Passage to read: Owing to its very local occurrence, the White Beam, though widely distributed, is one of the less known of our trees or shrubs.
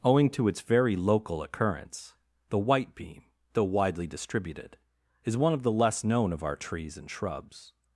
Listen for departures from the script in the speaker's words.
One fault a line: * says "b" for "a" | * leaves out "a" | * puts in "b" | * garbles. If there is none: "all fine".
* says "and" for "or"